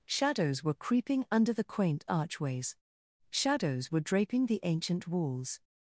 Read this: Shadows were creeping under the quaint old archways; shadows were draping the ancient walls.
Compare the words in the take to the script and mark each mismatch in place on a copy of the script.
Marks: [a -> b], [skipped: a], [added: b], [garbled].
Shadows were creeping under the quaint [skipped: old] archways; shadows were draping the ancient walls.